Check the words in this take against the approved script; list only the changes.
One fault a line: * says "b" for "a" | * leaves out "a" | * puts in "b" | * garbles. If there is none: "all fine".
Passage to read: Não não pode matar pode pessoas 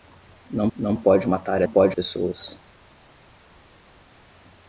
all fine